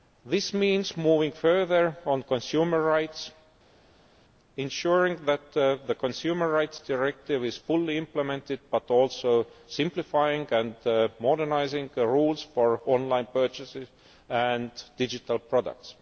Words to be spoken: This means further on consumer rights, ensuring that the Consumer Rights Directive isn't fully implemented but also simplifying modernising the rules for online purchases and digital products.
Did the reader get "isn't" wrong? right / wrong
wrong